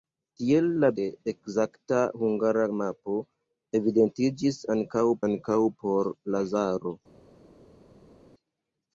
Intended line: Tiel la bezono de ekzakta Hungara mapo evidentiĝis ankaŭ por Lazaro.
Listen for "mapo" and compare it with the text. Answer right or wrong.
right